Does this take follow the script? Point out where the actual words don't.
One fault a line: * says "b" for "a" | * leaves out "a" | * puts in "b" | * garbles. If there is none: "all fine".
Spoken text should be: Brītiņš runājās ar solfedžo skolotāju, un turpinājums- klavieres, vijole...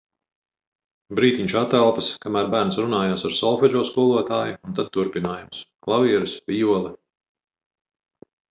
* puts in "atelpas kamēr bērns"
* puts in "tad"